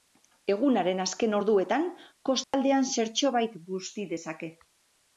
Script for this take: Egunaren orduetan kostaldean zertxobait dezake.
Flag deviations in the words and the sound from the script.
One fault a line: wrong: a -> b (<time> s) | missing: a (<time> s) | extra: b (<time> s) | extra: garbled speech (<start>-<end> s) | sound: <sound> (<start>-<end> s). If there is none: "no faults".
extra: azken (1.0 s)
sound: dropout (2.4-2.5 s)
extra: busti (3.7 s)